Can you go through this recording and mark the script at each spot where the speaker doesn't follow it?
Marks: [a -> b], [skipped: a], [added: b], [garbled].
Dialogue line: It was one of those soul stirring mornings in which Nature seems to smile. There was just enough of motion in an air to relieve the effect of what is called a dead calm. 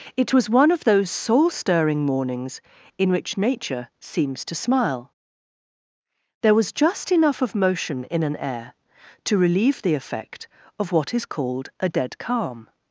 It was one of those soul stirring mornings in which Nature seems to smile. There was just enough of motion in an air to relieve the effect of what is called a dead calm.